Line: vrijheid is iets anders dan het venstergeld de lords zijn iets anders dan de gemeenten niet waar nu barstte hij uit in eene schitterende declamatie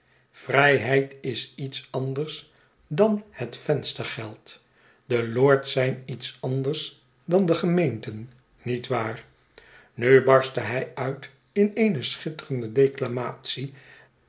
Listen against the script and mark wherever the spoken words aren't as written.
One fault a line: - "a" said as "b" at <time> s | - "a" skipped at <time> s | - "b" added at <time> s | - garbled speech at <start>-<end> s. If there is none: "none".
none